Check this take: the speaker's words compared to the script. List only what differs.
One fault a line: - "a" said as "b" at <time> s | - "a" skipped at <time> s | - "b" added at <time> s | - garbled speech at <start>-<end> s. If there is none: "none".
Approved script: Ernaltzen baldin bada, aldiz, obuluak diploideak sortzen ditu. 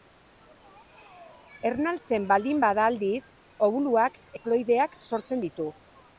none